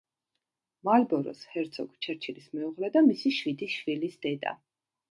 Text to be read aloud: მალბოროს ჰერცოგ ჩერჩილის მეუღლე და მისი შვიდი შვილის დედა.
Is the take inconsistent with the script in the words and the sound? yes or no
no